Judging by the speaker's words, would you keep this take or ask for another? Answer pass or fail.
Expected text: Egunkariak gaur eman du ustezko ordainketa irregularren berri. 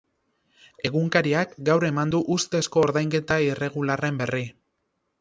pass